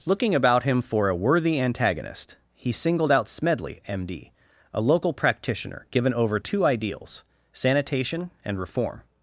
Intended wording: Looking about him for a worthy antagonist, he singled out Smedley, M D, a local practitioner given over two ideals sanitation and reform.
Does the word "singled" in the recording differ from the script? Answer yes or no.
no